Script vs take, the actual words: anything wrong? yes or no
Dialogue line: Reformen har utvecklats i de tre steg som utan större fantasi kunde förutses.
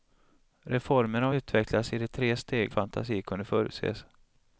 yes